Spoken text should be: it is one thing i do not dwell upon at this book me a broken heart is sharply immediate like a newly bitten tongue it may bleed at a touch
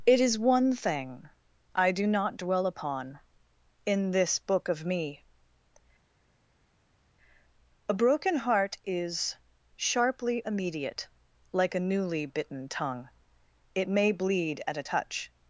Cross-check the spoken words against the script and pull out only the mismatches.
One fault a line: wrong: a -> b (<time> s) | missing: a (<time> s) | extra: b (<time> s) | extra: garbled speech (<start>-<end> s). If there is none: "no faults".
wrong: at -> in (3.9 s)
extra: of (4.7 s)